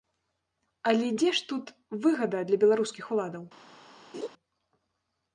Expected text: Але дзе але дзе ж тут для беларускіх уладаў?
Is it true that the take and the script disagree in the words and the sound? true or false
true